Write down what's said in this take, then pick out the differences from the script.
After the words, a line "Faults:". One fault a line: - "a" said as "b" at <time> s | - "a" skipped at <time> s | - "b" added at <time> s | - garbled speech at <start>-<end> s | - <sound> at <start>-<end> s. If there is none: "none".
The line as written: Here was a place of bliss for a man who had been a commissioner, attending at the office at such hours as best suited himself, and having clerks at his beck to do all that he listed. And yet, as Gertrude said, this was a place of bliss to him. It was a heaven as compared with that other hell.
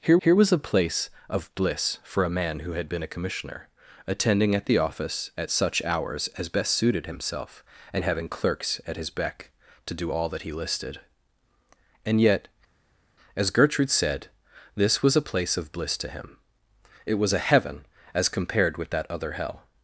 Here here was a place of bliss for a man who had been a commissioner, attending at the office at such hours as best suited himself, and having clerks at his beck to do all that he listed. And yet, as Gertrude said, this was a place of bliss to him. It was a heaven as compared with that other hell.
Faults:
- "here" added at 0.2 s